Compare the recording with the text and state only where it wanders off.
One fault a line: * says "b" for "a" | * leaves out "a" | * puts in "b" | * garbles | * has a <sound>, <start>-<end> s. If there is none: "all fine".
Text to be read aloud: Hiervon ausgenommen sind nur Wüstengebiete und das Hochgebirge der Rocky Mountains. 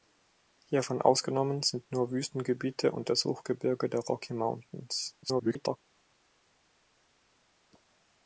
* garbles